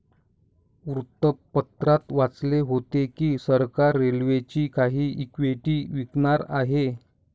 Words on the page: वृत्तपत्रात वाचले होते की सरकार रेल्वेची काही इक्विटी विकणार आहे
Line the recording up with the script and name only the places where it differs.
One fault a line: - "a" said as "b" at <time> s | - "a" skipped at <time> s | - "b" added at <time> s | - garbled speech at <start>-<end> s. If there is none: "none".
none